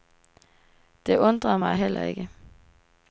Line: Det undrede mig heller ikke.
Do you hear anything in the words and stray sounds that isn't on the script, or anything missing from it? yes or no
no